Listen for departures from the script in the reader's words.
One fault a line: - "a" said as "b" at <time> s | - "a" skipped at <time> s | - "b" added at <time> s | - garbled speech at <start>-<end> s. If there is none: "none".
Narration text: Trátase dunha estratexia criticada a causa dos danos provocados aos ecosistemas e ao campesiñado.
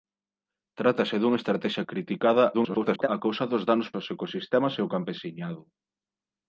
- garbled speech at 2.5-3.1 s
- "provocados" skipped at 3.9 s